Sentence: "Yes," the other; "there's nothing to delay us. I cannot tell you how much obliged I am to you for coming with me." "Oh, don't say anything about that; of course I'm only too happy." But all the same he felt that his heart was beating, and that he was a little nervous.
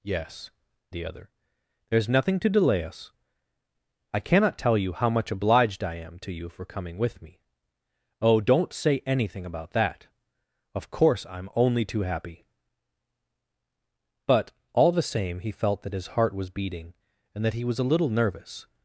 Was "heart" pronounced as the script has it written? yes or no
yes